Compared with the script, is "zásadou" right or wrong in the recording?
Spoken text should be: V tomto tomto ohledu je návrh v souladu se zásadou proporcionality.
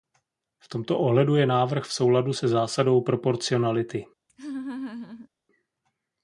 right